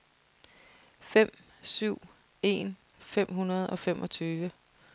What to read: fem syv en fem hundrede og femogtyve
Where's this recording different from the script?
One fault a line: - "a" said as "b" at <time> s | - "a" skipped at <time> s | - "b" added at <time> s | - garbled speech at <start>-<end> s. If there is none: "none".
none